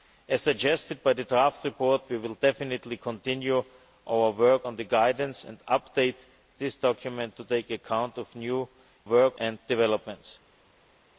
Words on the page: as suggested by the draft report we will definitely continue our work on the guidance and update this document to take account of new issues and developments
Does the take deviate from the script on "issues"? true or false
true